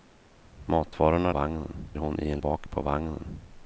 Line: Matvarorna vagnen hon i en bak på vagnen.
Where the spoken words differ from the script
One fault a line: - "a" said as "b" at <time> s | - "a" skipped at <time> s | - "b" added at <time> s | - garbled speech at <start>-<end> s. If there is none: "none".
none